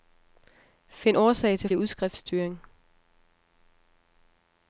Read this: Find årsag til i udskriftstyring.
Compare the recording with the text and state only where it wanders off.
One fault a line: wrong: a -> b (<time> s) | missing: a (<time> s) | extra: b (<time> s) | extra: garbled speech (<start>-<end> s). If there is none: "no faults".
no faults